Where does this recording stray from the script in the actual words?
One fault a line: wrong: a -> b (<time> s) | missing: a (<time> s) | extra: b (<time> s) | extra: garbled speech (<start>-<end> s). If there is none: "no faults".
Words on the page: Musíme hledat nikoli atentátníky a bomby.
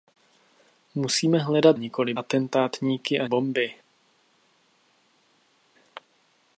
no faults